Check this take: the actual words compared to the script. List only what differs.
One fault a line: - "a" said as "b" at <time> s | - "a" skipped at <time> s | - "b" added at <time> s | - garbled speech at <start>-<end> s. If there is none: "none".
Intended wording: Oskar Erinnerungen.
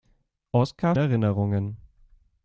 none